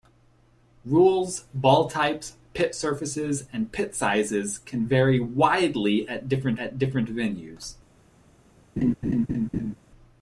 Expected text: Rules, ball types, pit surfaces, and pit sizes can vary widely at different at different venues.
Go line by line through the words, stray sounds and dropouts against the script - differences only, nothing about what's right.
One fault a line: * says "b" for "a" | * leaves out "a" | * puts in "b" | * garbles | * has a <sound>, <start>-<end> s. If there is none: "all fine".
* has a laugh, 8.8-9.8 s